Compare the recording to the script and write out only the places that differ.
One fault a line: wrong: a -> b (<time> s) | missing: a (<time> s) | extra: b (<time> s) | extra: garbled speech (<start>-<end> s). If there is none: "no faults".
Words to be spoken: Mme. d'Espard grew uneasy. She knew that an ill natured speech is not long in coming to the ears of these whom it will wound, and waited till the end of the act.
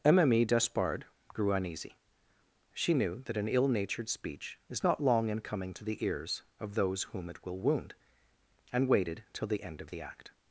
wrong: these -> those (6.7 s)